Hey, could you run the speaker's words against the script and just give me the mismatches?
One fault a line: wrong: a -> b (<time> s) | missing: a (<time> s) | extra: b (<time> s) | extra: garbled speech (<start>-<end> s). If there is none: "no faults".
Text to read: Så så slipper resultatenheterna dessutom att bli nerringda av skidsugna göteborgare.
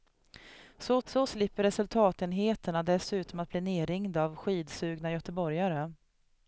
no faults